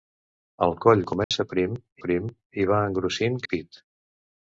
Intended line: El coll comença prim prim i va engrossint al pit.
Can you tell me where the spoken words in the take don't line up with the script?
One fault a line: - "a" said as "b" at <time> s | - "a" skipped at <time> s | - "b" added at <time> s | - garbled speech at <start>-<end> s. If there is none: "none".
none